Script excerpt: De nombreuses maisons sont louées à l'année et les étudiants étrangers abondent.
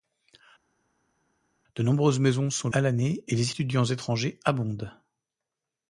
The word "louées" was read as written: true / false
false